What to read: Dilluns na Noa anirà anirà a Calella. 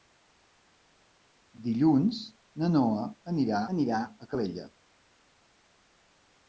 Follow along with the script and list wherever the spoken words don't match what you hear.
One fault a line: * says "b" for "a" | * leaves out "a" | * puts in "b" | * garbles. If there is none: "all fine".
all fine